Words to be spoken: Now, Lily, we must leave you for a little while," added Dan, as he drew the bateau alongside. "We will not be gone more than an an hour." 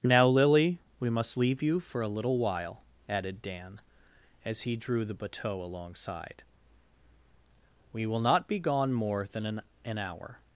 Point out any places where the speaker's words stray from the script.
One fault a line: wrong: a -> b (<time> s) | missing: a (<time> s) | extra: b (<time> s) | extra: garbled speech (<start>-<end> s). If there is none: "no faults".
no faults